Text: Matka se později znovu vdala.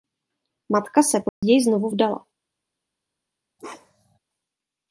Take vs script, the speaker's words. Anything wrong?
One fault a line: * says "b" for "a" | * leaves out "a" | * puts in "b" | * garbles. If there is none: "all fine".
all fine